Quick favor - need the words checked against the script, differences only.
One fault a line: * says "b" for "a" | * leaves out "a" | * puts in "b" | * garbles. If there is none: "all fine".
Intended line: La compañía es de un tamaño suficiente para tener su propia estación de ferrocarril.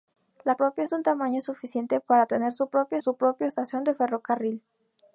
* says "propia" for "compañía"
* puts in "su propia"